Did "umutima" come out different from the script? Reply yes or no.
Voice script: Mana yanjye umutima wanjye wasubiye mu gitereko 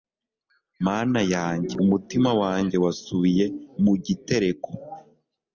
no